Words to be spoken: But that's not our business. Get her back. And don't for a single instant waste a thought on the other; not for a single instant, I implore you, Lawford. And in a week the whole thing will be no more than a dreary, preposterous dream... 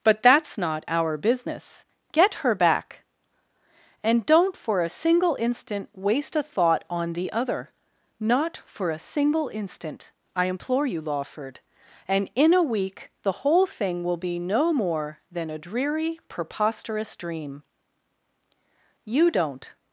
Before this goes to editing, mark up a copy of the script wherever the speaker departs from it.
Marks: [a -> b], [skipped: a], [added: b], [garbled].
But that's not our business. Get her back. And don't for a single instant waste a thought on the other; not for a single instant, I implore you, Lawford. And in a week the whole thing will be no more than a dreary, preposterous dream... [added: You don't]